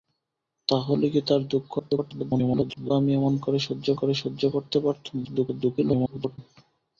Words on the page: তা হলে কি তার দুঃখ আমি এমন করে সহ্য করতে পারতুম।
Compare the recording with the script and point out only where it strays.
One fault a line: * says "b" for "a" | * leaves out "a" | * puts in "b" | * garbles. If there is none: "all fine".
* garbles
* puts in "করে সহ্য"
* garbles